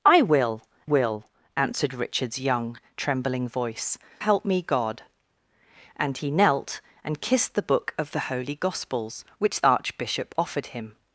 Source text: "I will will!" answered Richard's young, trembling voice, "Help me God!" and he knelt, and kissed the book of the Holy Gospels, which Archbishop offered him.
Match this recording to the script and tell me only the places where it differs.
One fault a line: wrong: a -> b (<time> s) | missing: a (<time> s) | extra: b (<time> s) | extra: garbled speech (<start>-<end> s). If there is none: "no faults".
no faults